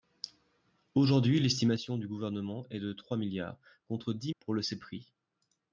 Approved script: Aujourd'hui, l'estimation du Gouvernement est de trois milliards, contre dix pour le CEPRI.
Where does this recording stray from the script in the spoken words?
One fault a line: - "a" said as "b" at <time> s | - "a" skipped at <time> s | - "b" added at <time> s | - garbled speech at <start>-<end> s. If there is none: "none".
none